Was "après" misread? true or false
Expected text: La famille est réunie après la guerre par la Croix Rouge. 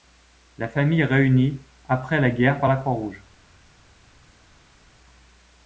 false